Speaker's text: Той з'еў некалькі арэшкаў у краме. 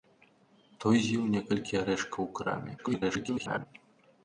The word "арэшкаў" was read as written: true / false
true